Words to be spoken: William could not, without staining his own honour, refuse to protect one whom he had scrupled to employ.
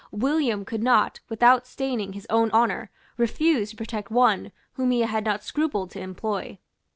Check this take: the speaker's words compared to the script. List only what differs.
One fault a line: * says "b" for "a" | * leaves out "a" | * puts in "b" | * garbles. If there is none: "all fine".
* puts in "not"